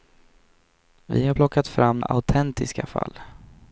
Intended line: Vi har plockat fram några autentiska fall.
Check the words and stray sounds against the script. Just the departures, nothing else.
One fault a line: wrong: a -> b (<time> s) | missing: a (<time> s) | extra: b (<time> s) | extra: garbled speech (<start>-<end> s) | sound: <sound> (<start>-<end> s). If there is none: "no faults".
missing: några (2.0 s)